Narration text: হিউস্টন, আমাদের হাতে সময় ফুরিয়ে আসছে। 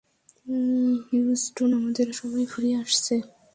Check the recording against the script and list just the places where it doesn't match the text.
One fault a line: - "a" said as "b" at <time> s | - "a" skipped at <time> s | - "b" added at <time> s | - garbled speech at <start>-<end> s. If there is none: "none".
- "হাতে" skipped at 2.1 s